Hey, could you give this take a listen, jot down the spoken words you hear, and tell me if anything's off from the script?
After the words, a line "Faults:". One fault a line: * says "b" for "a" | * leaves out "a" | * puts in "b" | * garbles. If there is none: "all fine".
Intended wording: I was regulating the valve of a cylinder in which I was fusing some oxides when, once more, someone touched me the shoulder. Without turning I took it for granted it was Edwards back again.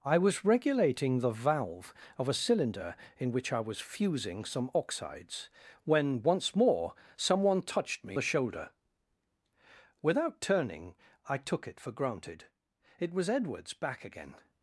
I was regulating the valve of a cylinder in which I was fusing some oxides when, once more, someone touched me the shoulder. Without turning I took it for granted it was Edwards back again.
Faults:
all fine